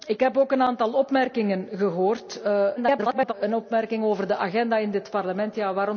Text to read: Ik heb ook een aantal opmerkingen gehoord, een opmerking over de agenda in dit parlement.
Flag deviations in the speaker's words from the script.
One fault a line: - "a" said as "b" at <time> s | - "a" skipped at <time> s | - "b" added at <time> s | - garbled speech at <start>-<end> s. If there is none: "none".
- garbled speech at 2.8-3.3 s